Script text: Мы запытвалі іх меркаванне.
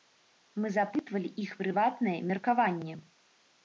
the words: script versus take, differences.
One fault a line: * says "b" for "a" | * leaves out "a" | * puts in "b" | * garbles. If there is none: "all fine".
* puts in "прыватнае"